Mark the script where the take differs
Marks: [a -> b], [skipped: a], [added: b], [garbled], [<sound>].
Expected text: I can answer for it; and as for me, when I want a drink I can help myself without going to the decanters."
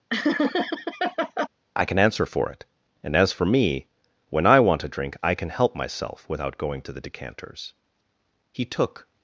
[laugh] I can answer for it; and as for me, when I want a drink I can help myself without going to the decanters." [added: He took]